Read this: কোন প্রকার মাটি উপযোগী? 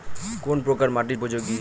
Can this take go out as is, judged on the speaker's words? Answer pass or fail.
pass